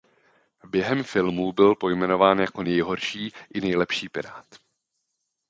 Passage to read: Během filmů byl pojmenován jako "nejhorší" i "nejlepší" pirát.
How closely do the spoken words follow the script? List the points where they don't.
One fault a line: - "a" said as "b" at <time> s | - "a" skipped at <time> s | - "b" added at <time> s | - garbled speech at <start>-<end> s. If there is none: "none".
none